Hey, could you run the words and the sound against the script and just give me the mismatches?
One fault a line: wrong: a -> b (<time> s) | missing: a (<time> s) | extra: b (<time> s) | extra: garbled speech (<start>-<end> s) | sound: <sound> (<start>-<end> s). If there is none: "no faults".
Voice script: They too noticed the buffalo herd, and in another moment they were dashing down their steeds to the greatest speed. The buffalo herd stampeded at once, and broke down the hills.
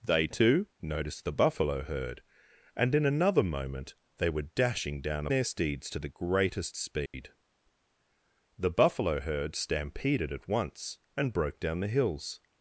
sound: dropout (7.1-7.1 s)